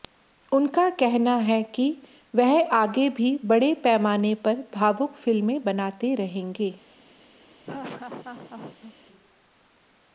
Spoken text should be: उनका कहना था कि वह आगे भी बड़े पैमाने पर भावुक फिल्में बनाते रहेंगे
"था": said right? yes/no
no